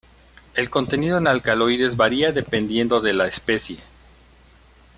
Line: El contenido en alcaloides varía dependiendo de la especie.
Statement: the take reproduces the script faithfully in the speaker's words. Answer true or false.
true